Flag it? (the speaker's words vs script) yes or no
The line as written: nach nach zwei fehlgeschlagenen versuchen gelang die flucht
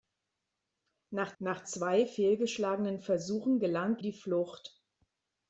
no